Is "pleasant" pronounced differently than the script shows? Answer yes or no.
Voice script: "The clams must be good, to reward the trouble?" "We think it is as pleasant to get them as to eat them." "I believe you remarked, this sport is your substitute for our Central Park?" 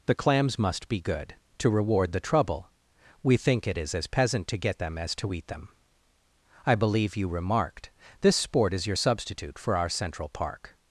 yes